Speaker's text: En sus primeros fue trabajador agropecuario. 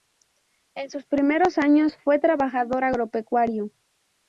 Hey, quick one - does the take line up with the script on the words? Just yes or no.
no